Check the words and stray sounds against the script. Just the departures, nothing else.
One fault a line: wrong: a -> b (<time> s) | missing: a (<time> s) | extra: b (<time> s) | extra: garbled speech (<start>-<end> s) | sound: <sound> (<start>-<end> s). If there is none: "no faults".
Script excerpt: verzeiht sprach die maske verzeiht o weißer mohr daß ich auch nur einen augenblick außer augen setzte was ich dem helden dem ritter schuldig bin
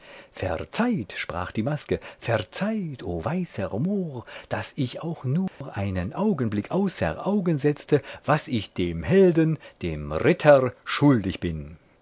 sound: dropout (5.5-5.6 s)